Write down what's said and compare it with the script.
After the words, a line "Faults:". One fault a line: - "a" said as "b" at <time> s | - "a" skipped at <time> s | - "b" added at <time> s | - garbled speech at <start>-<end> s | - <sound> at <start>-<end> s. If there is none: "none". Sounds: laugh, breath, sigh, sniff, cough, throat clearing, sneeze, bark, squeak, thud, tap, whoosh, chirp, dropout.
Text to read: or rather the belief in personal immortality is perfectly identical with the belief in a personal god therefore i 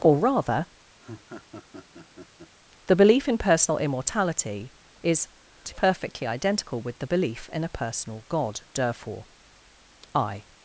or rather the belief in personal immortality is perfectly identical with the belief in a personal god therefore i
Faults:
- laugh at 1.0-2.5 s